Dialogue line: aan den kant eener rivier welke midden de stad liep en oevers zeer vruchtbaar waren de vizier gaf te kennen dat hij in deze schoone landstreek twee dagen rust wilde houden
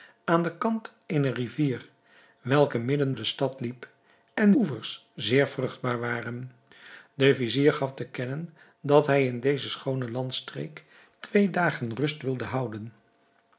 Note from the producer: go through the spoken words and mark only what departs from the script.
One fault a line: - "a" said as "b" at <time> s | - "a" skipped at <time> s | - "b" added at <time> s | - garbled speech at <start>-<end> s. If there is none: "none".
none